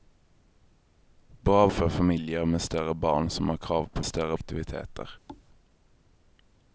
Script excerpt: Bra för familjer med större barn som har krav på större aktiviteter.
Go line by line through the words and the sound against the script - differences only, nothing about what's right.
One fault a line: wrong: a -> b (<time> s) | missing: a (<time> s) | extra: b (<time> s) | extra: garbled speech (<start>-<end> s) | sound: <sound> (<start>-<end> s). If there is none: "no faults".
sound: thud (5.3-5.5 s)